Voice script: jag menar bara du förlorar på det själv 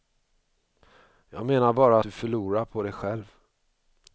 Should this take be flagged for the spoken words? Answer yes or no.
no